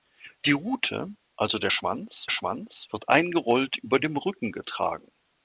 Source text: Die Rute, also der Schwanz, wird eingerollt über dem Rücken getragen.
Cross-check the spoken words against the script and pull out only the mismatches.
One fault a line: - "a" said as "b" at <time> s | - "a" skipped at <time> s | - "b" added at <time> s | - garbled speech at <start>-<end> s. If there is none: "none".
- "Schwanz" added at 2.3 s